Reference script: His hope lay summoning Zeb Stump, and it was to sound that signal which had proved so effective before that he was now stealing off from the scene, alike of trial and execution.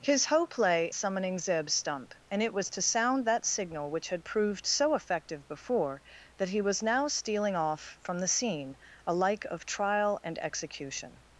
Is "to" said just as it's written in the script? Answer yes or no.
yes